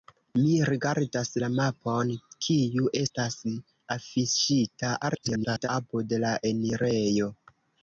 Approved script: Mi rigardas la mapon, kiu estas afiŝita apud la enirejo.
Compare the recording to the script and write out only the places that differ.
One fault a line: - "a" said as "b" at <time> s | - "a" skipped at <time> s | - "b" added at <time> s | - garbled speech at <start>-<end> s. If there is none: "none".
- garbled speech at 5.0-5.7 s